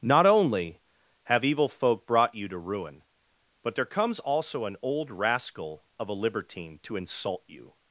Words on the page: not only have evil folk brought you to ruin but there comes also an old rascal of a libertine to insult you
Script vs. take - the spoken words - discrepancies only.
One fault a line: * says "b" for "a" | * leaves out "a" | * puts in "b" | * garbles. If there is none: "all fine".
all fine